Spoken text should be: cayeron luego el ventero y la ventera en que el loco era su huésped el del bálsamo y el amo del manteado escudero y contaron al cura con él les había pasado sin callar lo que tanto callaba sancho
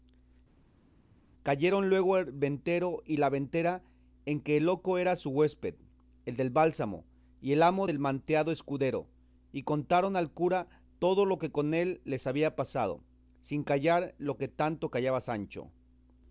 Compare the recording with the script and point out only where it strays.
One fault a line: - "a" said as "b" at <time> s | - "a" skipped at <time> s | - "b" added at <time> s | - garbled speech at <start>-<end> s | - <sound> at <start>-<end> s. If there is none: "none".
- "todo lo que" added at 11.0 s